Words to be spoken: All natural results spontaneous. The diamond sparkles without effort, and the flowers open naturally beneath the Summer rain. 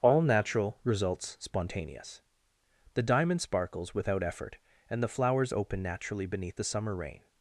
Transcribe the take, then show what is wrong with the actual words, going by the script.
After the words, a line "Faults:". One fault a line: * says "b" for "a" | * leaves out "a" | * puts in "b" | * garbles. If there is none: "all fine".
All natural results spontaneous. The diamond sparkles without effort, and the flowers open naturally beneath the Summer rain.
Faults:
all fine